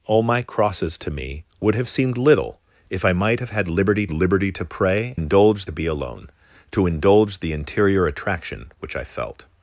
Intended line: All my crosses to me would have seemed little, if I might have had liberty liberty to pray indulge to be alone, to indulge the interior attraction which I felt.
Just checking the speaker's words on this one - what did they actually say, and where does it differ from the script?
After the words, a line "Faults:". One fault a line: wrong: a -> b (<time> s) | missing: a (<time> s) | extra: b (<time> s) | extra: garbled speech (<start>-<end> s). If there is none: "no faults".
All my crosses to me would have seemed little, if I might have had liberty liberty to pray indulge to be alone, to indulge the interior attraction which I felt.
Faults:
no faults